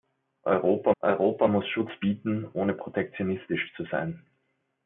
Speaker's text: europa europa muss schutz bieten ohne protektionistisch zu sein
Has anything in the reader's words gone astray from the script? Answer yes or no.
no